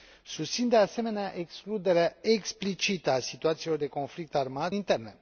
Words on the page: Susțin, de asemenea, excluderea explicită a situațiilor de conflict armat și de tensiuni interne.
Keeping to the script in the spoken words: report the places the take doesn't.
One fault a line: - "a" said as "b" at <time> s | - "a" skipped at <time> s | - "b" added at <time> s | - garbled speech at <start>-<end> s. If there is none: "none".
- "și de tensiuni" skipped at 4.7 s